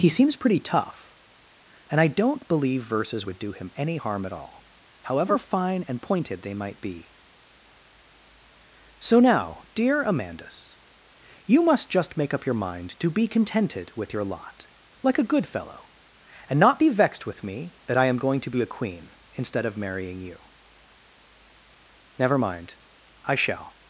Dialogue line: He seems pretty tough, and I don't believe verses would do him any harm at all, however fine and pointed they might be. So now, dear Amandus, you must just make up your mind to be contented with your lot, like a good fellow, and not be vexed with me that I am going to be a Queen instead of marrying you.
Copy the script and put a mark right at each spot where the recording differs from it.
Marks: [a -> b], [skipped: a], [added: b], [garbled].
He seems pretty tough, and I don't believe verses would do him any harm at all, however fine and pointed they might be. So now, dear Amandus, you must just make up your mind to be contented with your lot, like a good fellow, and not be vexed with me that I am going to be a Queen instead of marrying you. [added: Never mind I shall]